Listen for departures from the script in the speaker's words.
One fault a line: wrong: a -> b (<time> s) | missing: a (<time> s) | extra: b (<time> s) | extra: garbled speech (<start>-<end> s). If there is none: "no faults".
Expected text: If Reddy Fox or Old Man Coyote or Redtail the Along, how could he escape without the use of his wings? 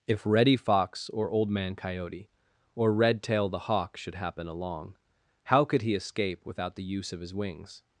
extra: Hawk should happen (3.7 s)